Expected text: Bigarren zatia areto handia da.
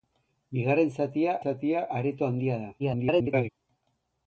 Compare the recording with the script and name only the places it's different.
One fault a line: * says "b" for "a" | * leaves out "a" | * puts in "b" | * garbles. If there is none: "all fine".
* puts in "zatia"
* garbles